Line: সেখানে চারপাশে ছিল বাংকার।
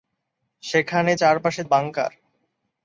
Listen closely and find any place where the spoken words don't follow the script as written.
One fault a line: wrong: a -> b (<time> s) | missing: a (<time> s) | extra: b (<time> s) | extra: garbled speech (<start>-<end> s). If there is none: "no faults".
missing: ছিল (1.6 s)